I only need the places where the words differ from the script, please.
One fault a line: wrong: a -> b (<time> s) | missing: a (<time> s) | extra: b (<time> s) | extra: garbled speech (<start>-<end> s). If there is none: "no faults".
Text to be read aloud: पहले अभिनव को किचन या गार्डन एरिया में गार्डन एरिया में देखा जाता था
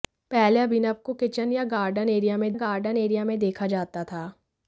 no faults